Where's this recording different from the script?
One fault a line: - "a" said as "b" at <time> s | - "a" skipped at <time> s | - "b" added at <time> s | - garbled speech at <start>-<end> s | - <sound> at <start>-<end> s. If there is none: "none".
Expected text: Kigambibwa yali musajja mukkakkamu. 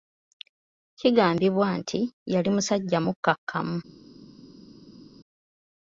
- "nti" added at 1.8 s